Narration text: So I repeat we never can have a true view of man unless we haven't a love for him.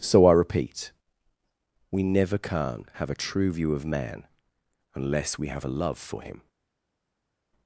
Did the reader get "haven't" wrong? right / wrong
wrong